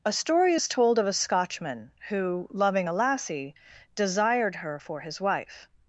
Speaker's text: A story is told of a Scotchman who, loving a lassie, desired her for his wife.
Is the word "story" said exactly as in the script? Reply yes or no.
yes